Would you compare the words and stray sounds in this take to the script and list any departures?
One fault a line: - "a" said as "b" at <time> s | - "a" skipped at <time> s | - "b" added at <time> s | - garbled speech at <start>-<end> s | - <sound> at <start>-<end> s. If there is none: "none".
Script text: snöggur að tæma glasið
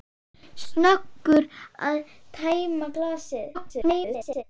- garbled speech at 3.5-4.4 s